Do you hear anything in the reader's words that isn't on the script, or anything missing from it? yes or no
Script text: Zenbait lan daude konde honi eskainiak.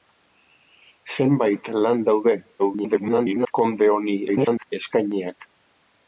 yes